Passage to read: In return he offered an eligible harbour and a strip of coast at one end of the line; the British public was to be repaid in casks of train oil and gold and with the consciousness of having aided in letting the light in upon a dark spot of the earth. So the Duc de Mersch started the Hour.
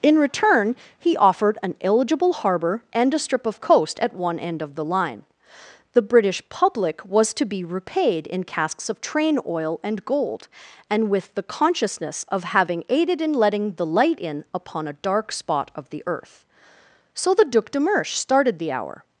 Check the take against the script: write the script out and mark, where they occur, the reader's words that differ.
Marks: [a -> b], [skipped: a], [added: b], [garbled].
In return he offered an eligible harbour and a strip of coast at one end of the line; the British public was to be repaid in casks of train oil and gold and with the consciousness of having aided in letting the light in upon a dark spot of the earth. So the Duc de Mersch started the Hour.